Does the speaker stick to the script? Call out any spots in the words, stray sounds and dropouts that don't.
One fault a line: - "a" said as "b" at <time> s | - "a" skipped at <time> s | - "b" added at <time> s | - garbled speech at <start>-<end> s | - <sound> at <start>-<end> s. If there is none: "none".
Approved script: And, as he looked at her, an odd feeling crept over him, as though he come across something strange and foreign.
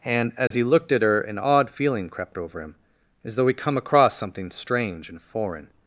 - dropout at 0.5-0.5 s